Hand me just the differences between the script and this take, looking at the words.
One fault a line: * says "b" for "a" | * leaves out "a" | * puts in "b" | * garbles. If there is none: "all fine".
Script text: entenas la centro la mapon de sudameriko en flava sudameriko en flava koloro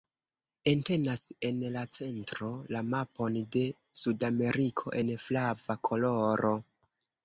* puts in "en"
* leaves out "sudameriko en flava"